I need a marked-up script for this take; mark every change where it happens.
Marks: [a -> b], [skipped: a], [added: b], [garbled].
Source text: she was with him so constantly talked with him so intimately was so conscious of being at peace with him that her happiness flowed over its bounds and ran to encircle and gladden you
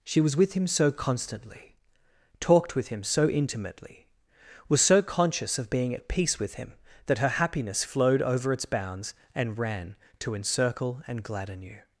she was with him so constantly talked with him so intimately was so conscious of being at peace with him that her happiness flowed over its bounds and ran to encircle and gladden you